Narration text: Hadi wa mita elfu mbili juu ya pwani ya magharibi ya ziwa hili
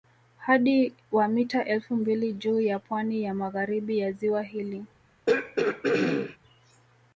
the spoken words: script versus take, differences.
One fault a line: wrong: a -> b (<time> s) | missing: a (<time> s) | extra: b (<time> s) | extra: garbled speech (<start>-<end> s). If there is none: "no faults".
no faults